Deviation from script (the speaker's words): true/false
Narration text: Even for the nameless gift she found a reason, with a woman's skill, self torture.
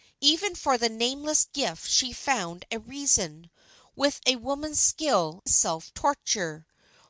false